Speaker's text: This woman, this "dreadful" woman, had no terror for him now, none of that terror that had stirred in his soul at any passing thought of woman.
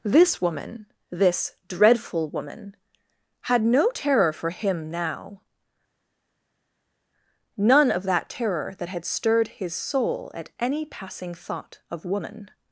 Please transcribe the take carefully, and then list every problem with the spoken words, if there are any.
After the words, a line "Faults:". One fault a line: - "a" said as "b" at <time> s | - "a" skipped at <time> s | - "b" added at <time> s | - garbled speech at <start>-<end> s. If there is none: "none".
This woman, this "dreadful" woman, had no terror for him now, none of that terror that had stirred his soul at any passing thought of woman.
Faults:
- "in" skipped at 9.5 s